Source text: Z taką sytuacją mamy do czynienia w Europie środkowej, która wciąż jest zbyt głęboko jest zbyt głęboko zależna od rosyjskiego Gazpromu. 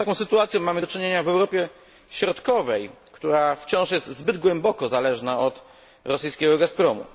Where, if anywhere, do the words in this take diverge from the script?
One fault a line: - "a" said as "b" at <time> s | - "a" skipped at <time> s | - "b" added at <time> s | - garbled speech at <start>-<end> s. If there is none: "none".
- "jest zbyt głęboko" skipped at 4.9 s